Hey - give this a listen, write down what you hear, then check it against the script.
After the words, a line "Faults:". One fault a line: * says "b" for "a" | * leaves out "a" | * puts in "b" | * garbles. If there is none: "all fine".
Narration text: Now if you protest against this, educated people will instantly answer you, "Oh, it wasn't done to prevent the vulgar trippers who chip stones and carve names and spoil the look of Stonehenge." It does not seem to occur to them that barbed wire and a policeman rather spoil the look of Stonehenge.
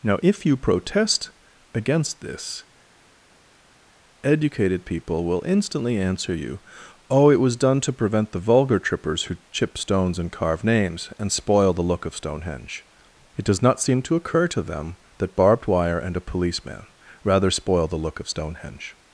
Now if you protest against this, educated people will instantly answer you, "Oh, it was done to prevent the vulgar trippers who chip stones and carve names and spoil the look of Stonehenge." It does not seem to occur to them that barbed wire and a policeman rather spoil the look of Stonehenge.
Faults:
* says "was" for "wasn't"